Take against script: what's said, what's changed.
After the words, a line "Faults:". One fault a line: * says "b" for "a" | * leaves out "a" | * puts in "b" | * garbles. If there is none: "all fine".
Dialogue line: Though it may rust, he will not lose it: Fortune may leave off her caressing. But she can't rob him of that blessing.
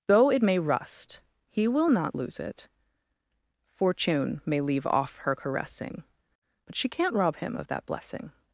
Though it may rust, he will not lose it: Fortune may leave off her caressing. But she can't rob him of that blessing.
Faults:
all fine